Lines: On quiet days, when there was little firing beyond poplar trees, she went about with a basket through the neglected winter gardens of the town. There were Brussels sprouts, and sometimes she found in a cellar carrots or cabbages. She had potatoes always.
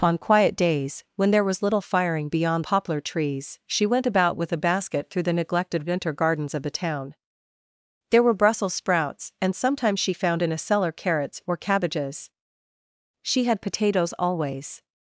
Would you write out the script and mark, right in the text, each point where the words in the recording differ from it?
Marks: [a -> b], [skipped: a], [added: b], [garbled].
On quiet days, when there was little firing beyond poplar trees, she went about with a basket through the neglected winter gardens of the town. There were Brussels sprouts, and sometimes she found in a cellar carrots or cabbages. She had potatoes always.